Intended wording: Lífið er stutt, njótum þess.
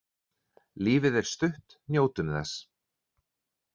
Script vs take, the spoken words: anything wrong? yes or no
no